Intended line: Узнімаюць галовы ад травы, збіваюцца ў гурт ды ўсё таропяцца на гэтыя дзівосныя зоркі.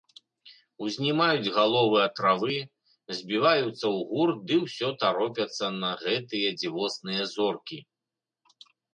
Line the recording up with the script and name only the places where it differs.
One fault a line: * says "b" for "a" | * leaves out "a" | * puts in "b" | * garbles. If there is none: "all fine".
all fine